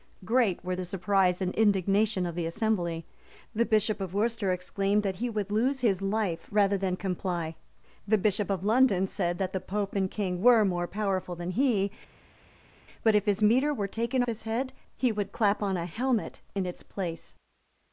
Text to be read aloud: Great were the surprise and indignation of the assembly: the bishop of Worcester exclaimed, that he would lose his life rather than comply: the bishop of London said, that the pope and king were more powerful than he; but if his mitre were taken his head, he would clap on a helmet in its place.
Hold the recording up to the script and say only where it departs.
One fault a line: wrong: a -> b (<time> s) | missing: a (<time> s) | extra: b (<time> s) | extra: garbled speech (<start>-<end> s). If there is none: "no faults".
no faults